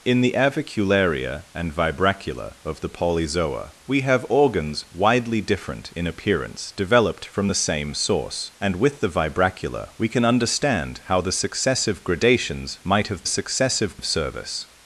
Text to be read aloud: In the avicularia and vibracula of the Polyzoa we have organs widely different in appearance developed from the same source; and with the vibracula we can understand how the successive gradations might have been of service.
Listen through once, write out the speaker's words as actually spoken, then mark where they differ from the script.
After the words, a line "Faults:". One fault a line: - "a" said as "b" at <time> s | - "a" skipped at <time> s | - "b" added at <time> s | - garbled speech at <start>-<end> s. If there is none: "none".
In the avicularia and vibracula of the Polyzoa we have organs widely different in appearance developed from the same source; and with the vibracula we can understand how the successive gradations might have successive of service.
Faults:
- "been" said as "successive" at 13.3 s